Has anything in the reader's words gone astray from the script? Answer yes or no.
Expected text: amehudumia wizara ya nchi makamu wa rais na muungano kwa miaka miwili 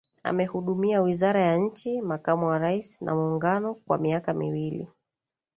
no